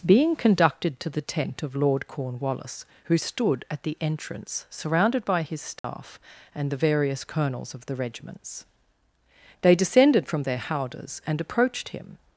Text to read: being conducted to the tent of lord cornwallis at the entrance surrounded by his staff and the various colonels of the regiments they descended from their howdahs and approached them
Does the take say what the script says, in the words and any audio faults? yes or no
no